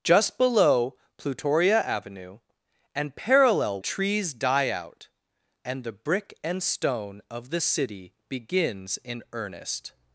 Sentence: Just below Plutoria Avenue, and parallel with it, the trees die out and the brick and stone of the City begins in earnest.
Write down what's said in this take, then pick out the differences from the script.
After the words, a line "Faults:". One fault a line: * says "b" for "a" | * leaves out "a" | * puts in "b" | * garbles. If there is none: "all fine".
Just below Plutoria Avenue, and parallel trees die out and the brick and stone of the City begins in earnest.
Faults:
* leaves out "with it the"